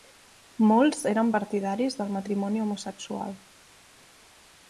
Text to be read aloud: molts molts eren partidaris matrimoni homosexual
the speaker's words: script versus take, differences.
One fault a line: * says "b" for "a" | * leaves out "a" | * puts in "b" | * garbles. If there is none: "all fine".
* leaves out "molts"
* puts in "del"